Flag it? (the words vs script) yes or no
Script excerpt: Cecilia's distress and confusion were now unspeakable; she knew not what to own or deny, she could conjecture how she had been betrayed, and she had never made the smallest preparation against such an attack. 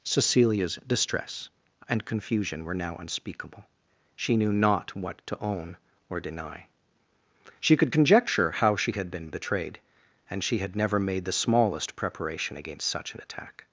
no